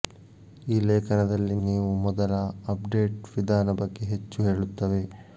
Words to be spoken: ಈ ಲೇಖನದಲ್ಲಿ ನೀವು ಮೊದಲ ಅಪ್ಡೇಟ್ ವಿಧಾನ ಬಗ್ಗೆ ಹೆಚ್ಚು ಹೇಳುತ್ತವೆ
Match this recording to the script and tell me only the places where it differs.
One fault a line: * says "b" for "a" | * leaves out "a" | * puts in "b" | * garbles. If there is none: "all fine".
all fine